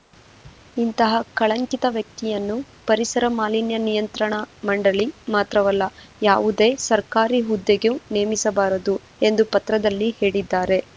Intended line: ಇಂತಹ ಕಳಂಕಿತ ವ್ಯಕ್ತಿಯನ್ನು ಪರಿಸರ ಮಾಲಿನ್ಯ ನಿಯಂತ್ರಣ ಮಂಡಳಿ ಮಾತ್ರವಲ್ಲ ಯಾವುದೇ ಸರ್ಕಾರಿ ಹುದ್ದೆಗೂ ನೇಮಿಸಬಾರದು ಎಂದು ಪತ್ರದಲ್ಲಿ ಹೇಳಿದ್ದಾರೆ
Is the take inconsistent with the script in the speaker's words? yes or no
no